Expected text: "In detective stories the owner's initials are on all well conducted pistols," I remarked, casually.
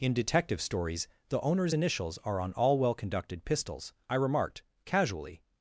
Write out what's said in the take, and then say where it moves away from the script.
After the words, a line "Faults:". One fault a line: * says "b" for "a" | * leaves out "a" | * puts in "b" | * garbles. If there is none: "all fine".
"In detective stories the owner's initials are on all well conducted pistols," I remarked, casually.
Faults:
all fine